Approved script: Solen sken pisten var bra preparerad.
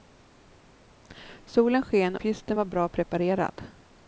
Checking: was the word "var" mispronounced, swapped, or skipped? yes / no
no